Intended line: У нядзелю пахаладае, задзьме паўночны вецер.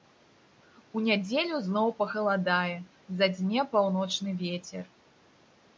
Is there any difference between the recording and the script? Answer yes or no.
yes